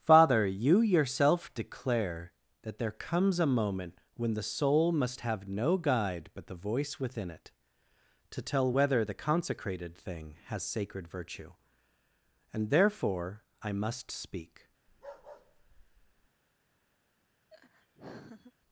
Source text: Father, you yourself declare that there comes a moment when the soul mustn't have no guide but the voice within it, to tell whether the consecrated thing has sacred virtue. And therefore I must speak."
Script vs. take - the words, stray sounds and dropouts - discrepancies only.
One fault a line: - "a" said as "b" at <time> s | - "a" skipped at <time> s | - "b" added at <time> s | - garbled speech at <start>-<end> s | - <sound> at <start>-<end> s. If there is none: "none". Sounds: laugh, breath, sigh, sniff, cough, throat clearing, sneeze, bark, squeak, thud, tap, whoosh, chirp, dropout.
- "mustn't" said as "must" at 4.9 s
- bark at 14.9-16.3 s
- laugh at 17.5-18.5 s